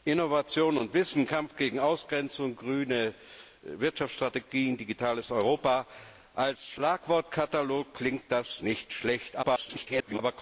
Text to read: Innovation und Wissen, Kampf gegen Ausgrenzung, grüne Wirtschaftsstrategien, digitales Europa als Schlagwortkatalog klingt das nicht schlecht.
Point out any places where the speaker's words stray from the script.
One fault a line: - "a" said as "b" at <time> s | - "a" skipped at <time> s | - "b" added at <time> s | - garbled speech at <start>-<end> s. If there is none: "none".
- garbled speech at 9.4-10.2 s